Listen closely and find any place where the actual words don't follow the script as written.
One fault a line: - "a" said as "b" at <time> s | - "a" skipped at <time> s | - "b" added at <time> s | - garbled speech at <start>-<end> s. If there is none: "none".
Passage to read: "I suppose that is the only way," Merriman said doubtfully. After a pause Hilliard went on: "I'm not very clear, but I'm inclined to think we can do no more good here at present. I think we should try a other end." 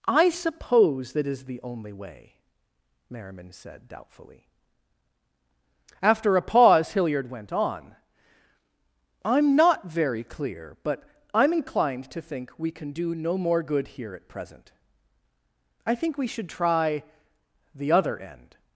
- "a" said as "the" at 17.8 s